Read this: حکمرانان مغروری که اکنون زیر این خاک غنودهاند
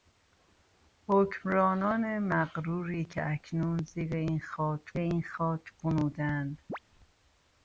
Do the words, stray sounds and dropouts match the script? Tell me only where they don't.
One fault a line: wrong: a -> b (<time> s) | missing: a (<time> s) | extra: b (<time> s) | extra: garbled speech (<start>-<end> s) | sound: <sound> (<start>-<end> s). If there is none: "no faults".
extra: این خاک (5.0 s)
sound: chirp (6.7-6.8 s)